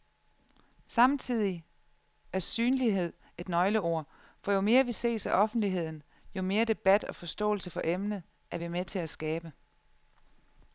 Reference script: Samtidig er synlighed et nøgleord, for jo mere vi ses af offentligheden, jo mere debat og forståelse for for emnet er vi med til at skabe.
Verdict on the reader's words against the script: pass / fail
fail